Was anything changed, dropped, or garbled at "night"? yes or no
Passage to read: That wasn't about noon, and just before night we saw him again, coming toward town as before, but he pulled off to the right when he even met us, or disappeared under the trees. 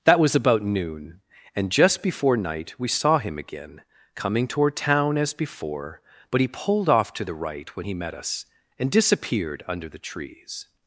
no